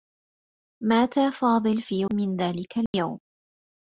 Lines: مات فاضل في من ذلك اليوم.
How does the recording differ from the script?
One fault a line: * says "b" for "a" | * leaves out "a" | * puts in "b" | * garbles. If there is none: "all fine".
all fine